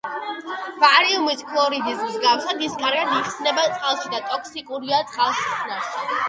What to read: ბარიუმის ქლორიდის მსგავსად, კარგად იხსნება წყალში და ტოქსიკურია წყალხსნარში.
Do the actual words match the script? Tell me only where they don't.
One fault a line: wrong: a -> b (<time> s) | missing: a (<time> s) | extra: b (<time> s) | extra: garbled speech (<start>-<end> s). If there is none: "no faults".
extra: ის (2.7 s)